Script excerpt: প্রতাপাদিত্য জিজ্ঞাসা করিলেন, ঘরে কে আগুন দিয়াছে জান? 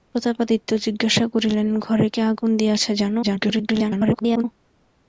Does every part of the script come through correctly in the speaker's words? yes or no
no